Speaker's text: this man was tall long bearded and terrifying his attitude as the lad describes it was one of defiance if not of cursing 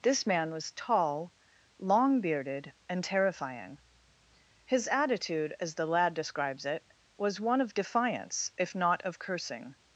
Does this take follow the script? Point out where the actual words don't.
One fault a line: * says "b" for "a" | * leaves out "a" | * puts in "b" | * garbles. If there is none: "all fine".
all fine